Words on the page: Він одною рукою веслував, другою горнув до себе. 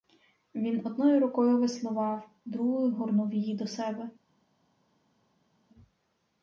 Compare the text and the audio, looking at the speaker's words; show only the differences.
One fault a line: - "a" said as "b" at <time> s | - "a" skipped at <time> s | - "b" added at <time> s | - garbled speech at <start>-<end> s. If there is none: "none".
- "її" added at 3.3 s